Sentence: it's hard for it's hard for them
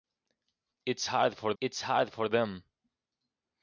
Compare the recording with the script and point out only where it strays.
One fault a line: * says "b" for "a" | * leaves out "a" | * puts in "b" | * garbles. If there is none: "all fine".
all fine